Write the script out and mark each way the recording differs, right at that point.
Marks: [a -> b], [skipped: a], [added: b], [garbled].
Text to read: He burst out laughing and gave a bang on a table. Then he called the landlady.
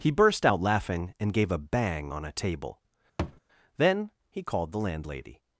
He burst out laughing and gave a bang on a table. Then he called the landlady.